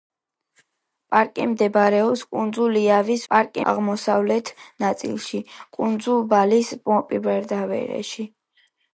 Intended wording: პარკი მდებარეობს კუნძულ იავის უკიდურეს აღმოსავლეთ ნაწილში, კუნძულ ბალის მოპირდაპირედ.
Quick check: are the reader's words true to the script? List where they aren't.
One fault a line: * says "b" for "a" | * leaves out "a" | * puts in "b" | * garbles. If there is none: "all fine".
* says "პარკი" for "უკიდურეს"